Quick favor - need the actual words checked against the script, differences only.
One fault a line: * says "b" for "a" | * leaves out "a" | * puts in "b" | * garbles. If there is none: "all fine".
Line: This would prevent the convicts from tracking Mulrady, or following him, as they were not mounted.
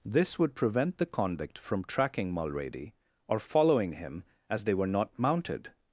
* says "convict" for "convicts"